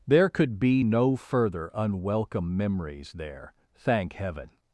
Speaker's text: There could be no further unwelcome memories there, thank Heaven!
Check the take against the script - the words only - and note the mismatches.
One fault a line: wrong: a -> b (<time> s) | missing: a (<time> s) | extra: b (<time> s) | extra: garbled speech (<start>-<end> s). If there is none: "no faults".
no faults